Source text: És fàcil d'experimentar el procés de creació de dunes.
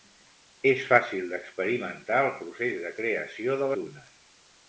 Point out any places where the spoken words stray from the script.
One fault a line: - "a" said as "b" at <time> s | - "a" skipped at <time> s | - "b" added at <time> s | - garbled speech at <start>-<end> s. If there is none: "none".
none